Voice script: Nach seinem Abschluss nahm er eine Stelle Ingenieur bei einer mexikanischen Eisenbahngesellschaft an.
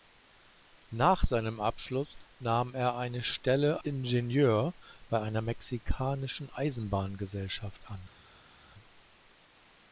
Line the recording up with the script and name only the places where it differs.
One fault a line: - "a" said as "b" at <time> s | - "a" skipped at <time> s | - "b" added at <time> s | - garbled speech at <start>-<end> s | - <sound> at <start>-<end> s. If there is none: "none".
none